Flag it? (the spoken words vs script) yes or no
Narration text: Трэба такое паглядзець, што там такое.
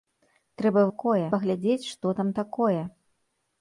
no